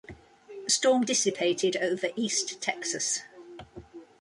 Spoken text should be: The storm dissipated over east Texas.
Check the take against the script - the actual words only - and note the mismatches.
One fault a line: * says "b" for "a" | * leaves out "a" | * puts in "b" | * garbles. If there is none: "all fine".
all fine